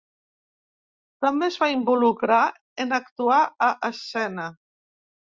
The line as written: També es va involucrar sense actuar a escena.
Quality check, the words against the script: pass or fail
fail